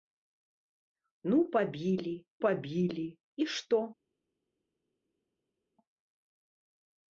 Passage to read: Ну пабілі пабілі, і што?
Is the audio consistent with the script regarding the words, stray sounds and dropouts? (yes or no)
yes